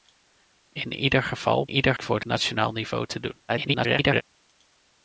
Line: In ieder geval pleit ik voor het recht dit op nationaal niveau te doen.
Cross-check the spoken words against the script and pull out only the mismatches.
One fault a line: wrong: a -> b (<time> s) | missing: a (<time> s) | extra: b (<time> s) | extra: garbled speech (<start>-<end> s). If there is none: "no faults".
wrong: pleit -> ieder (1.7 s)
missing: recht dit op (2.2 s)
extra: garbled speech (3.5-4.2 s)